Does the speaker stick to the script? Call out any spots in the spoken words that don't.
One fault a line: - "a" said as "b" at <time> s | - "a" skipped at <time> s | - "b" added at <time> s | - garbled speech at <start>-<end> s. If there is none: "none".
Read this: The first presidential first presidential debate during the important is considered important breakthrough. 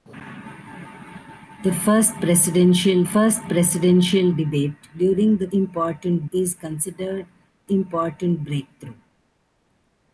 none